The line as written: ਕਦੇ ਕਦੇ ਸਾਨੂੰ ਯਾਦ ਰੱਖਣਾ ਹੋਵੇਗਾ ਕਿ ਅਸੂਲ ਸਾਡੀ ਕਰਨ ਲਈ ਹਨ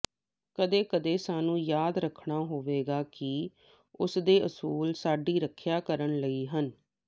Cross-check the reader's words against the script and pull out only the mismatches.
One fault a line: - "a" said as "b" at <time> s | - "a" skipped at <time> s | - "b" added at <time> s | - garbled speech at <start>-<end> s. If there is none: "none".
- "ਉਸਦੇ" added at 4.0 s
- "ਰੱਖਿਆ" added at 5.4 s